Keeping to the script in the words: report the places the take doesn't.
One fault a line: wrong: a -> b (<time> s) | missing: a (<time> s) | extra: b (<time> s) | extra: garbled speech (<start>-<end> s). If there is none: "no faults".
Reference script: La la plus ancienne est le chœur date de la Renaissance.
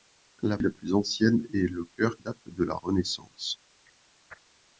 no faults